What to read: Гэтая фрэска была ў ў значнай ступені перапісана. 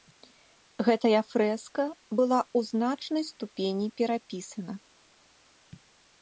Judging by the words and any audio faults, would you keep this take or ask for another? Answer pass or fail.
fail